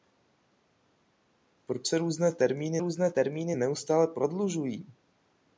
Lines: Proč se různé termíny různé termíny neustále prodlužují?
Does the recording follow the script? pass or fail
pass